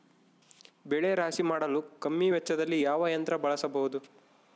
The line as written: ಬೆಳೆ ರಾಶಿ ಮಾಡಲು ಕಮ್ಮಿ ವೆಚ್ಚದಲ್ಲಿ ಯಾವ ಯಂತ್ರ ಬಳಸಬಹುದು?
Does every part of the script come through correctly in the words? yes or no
yes